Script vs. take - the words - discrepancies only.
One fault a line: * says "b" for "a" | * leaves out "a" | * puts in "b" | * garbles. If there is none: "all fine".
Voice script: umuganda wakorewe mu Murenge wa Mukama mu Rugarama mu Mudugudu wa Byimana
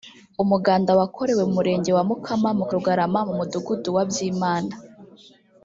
all fine